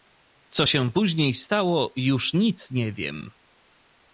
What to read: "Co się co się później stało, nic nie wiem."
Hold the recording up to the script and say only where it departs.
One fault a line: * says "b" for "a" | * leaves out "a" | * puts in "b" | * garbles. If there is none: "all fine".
* leaves out "co się"
* puts in "już"